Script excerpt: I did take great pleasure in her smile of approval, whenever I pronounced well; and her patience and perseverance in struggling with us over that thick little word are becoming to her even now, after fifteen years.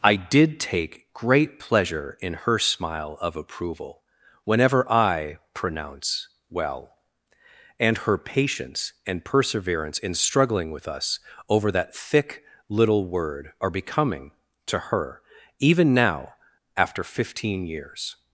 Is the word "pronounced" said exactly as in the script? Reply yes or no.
no